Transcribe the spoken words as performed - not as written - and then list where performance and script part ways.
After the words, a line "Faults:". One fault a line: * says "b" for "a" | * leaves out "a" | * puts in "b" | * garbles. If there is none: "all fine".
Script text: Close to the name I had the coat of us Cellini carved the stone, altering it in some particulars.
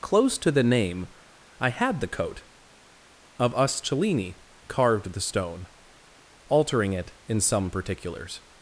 Close to the name I had the coat of us Cellini carved the stone, altering it in some particulars.
Faults:
all fine